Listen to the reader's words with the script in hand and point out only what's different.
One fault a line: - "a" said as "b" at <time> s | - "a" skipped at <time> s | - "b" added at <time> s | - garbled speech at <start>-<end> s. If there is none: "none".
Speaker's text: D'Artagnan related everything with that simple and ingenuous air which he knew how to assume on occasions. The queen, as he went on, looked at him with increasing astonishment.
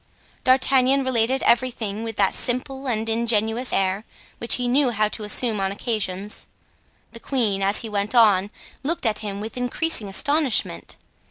none